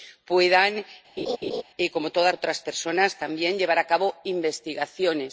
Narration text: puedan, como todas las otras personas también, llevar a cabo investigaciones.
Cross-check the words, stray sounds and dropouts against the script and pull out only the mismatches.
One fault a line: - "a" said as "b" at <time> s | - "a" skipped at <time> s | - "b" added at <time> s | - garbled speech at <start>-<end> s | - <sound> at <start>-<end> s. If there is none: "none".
- laugh at 1.2-1.6 s
- "las" skipped at 2.3 s